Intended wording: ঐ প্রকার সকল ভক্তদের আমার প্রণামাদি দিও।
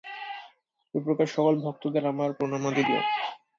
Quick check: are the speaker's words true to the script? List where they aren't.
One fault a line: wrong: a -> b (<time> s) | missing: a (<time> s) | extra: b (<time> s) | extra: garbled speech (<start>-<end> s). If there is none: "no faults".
no faults